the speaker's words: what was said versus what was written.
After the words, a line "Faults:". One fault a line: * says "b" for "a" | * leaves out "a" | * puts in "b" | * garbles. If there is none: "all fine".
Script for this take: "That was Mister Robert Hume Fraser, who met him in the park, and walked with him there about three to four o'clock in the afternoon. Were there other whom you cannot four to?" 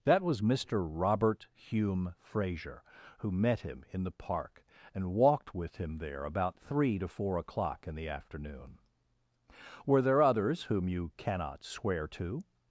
"That was Mister Robert Hume Fraser, who met him in the park, and walked with him there about three to four o'clock in the afternoon. Were there others whom you cannot swear to?"
Faults:
* says "others" for "other"
* says "swear" for "four"